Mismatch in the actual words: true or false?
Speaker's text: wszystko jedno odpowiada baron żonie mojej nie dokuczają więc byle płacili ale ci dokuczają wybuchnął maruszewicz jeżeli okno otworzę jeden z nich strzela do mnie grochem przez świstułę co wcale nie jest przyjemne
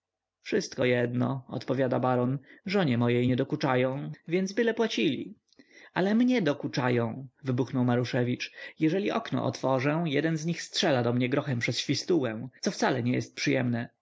true